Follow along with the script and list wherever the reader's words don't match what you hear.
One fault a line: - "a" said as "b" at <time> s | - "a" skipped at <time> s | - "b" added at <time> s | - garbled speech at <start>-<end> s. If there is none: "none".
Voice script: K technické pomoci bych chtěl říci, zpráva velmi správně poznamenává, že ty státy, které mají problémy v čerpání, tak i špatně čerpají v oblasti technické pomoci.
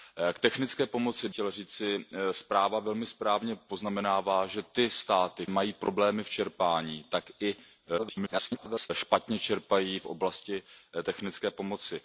- "bych" skipped at 1.3 s
- "které" skipped at 5.5 s
- garbled speech at 8.0-8.9 s